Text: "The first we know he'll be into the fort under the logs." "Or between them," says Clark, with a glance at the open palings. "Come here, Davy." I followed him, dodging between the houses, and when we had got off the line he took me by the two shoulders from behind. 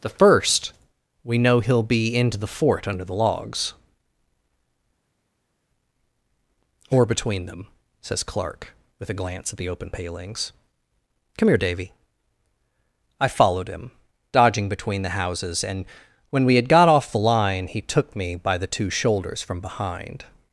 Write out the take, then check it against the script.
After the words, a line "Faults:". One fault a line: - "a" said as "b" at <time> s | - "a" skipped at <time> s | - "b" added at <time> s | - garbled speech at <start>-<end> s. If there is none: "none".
"The first we know he'll be into the fort under the logs." "Or between them," says Clark, with a glance at the open palings. "Come here, Davy." I followed him, dodging between the houses, and when we had got off the line he took me by the two shoulders from behind.
Faults:
none